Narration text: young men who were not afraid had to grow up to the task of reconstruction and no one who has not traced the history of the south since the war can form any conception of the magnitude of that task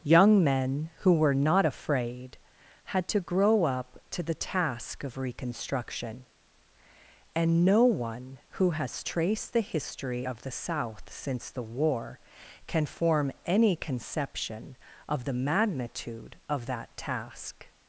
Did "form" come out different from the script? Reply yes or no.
no